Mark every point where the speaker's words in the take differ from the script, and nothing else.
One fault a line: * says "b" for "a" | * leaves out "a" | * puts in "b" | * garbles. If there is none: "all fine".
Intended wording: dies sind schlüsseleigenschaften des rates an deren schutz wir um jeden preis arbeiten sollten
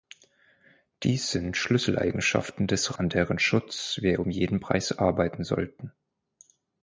* leaves out "rates"